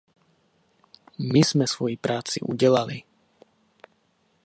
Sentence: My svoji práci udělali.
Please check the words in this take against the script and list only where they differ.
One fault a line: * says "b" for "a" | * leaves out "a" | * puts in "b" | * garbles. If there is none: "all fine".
* puts in "jsme"